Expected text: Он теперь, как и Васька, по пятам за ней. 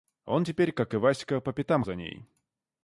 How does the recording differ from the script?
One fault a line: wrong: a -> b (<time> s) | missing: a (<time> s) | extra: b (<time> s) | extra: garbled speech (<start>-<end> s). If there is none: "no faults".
no faults